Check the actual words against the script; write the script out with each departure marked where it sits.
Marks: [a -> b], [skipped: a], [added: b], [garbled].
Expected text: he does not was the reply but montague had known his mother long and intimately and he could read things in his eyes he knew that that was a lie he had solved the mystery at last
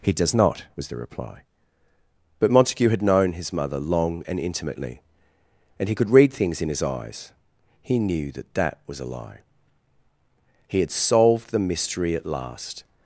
he does not was the reply but montague had known his mother long and intimately and he could read things in his eyes he knew that that was a lie he had solved the mystery at last